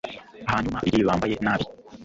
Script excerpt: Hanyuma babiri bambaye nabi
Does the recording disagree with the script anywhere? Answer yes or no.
no